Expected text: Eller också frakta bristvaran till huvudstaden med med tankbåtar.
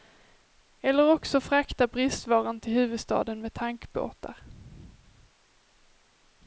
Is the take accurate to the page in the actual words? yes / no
no